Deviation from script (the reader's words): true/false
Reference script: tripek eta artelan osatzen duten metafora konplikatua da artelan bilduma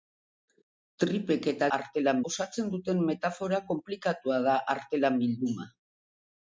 false